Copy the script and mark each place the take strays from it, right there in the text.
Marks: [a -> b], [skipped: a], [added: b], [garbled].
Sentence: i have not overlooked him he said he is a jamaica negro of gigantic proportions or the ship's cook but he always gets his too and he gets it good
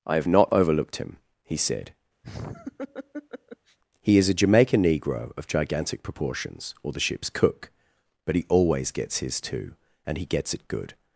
i have not overlooked him he said he is a jamaica negro of gigantic proportions or the ship's cook but he always gets his too and he gets it good